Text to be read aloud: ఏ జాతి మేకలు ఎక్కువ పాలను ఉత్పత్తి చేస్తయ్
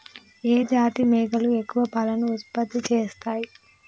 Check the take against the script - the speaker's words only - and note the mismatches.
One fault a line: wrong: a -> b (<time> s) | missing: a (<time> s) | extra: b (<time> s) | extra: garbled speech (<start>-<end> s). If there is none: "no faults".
no faults